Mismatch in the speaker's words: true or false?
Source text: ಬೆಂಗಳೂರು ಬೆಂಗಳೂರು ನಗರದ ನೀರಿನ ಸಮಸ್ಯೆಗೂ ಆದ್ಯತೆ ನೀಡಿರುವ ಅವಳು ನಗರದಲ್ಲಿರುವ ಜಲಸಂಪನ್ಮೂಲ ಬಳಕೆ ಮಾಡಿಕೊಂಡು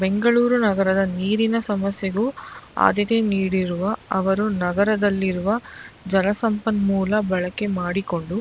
true